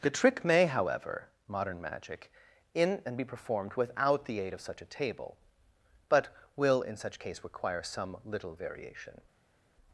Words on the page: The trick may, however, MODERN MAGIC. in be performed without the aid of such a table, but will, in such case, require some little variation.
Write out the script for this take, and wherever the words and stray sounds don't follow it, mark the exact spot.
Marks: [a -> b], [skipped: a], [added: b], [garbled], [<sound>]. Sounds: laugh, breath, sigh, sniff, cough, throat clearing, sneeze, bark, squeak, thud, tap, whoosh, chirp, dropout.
The trick may, however, MODERN MAGIC. in [added: and] be performed without the aid of such a table, but will, in such case, require some little variation.